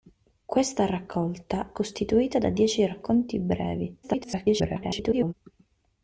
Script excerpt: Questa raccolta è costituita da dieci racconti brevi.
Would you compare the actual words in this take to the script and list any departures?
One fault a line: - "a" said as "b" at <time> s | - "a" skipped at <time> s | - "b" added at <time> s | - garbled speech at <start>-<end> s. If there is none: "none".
- "è" skipped at 1.8 s
- garbled speech at 4.0-5.3 s